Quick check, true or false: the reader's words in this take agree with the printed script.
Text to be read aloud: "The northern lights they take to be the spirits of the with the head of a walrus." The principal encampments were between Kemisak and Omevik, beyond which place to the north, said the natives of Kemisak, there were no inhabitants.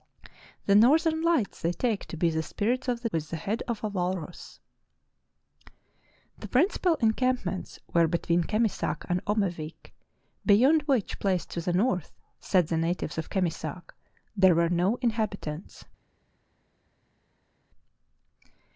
true